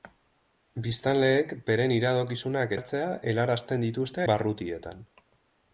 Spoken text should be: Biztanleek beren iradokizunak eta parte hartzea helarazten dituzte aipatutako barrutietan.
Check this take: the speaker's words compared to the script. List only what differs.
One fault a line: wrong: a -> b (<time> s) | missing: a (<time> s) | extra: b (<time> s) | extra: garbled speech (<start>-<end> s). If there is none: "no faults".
missing: eta parte (2.7 s)
missing: aipatutako (4.3 s)